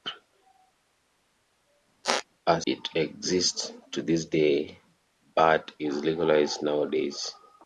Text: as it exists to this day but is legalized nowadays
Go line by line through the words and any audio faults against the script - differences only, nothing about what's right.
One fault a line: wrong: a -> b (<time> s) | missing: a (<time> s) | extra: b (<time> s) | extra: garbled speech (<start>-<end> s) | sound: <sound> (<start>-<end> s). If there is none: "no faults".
sound: squeak (2.0-2.2 s)